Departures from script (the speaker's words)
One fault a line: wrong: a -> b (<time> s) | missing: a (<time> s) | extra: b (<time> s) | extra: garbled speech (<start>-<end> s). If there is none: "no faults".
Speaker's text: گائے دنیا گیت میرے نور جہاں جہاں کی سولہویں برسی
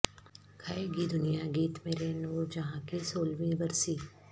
extra: گی (0.9 s)
missing: جہاں (2.8 s)